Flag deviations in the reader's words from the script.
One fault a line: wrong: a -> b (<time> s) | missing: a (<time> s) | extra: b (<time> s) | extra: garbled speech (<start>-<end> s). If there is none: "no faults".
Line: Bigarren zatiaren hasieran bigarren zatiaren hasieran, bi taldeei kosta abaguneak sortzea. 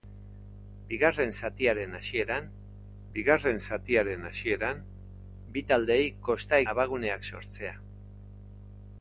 no faults